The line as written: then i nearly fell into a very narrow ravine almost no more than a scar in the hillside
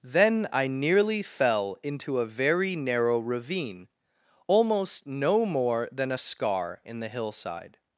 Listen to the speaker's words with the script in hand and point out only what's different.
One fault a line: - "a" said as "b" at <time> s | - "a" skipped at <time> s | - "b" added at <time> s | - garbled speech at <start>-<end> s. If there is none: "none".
none